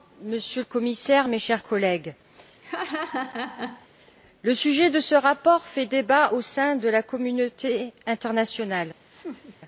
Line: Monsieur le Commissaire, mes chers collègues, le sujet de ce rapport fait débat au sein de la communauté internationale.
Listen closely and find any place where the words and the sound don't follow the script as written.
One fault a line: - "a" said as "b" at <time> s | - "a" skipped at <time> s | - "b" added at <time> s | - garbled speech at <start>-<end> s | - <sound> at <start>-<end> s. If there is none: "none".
- laugh at 2.6-3.9 s
- laugh at 9.1-9.6 s